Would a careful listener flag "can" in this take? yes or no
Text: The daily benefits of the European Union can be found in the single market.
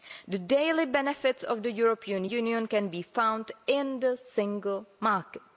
no